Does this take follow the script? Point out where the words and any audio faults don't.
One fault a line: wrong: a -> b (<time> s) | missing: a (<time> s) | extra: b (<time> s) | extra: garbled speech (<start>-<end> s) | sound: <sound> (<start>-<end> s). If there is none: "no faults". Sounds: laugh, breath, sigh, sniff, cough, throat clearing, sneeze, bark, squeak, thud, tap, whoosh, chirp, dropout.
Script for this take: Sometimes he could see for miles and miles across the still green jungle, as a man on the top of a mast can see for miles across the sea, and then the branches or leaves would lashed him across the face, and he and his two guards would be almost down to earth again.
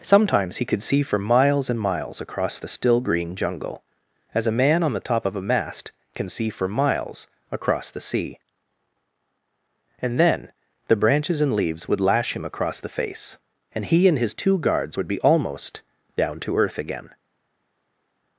wrong: or -> and (11.4 s)
wrong: lashed -> lash (12.0 s)